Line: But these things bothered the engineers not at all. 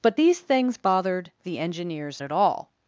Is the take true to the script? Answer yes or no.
no